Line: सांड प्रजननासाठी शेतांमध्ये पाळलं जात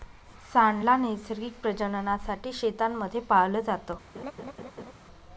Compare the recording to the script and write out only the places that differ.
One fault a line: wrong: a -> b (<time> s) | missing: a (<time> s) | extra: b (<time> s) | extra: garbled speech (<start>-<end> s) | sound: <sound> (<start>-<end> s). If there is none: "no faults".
extra: ला नैसर्गिक (0.8 s)
sound: laugh (4.1-4.9 s)